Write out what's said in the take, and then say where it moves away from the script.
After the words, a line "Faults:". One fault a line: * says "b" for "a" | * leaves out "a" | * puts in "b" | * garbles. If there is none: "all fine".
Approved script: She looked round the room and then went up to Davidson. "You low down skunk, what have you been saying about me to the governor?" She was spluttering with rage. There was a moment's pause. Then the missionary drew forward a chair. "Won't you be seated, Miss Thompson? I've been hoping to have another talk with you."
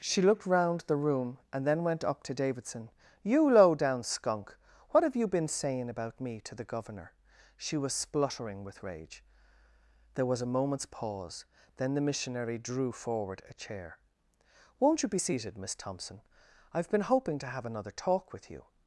She looked round the room and then went up to Davidson. "You low down skunk, what have you been saying about me to the governor?" She was spluttering with rage. There was a moment's pause. Then the missionary drew forward a chair. "Won't you be seated, Miss Thompson? I've been hoping to have another talk with you."
Faults:
all fine